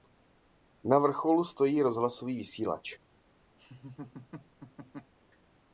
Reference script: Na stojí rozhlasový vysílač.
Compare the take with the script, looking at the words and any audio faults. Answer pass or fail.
fail